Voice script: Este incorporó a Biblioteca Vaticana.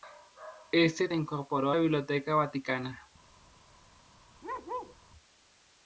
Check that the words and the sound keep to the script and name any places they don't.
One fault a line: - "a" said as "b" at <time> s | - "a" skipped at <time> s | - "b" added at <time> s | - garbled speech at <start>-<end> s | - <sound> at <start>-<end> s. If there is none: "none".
- bark at 4.4-5.0 s